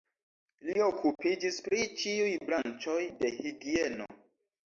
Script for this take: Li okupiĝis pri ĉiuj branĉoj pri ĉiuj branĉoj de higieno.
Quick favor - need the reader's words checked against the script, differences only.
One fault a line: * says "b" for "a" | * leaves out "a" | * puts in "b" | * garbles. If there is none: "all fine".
* leaves out "pri ĉiuj branĉoj"